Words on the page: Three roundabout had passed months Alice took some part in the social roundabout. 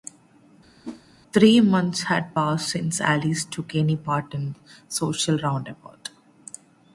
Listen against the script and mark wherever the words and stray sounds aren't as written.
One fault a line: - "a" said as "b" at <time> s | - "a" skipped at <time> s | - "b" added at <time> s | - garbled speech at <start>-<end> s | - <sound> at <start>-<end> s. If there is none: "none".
- whoosh at 0.8-1.0 s
- "roundabout" said as "months" at 1.6 s
- "months" said as "since" at 2.7 s
- "some" said as "any" at 3.8 s